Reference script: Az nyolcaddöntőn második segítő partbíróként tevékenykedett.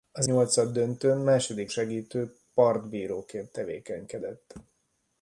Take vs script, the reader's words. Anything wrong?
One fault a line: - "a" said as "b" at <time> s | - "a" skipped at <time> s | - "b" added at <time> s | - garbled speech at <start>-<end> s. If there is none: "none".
none